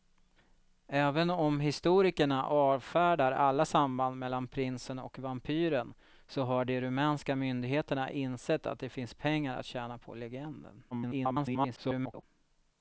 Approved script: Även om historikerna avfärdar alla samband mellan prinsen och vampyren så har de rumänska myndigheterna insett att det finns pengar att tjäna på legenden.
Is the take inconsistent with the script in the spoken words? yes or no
yes